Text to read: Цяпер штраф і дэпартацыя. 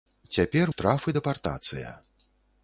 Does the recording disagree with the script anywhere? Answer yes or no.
no